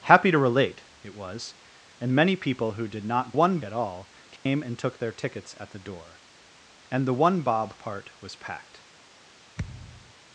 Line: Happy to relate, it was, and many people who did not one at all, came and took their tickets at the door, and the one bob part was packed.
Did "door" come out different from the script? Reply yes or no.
no